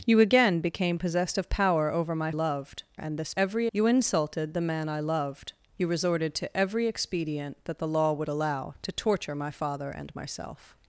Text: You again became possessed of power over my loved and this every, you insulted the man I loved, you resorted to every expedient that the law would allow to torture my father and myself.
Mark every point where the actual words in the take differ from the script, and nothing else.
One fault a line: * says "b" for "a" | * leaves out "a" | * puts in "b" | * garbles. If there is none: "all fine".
all fine